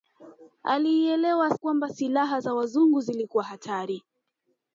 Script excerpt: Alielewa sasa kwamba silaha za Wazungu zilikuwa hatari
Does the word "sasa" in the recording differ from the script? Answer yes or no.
yes